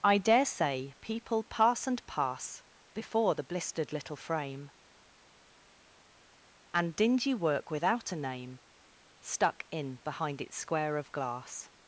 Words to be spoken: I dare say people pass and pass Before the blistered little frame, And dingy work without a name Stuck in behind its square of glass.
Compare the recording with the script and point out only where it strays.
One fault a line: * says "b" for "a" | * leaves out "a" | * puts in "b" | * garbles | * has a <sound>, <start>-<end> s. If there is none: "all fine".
all fine